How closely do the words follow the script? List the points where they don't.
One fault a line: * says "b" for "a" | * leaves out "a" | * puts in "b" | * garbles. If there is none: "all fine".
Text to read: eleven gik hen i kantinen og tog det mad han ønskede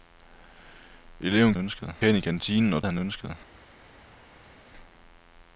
* says "ønskede" for "gik"
* leaves out "tog det mad"